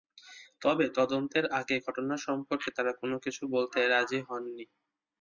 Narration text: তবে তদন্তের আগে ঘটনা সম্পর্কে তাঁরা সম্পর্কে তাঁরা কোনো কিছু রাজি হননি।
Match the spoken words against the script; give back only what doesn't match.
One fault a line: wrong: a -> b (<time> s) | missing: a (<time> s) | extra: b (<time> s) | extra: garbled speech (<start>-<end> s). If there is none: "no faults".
missing: সম্পর্কে তাঁরা (2.9 s)
extra: বলতে (3.5 s)